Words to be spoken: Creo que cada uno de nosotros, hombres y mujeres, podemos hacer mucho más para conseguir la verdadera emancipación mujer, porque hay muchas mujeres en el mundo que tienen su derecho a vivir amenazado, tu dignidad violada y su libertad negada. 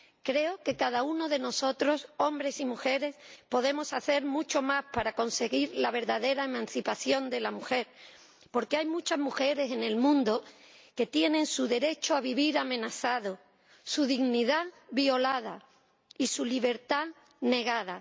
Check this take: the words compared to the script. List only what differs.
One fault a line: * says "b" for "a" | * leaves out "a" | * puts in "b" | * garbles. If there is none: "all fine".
* puts in "de la"
* says "su" for "tu"